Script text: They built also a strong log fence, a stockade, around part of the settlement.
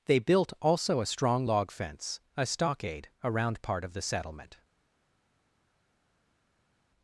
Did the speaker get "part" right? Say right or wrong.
right